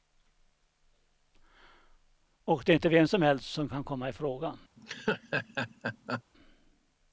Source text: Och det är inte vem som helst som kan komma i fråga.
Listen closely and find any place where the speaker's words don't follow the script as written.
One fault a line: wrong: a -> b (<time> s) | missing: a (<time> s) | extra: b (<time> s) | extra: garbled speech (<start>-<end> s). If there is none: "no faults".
no faults